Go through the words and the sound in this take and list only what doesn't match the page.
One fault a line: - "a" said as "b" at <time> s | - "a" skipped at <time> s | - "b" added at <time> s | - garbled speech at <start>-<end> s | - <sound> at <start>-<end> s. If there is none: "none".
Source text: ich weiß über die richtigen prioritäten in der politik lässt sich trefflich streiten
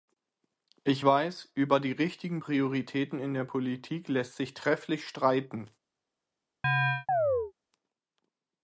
- chirp at 6.6-7.5 s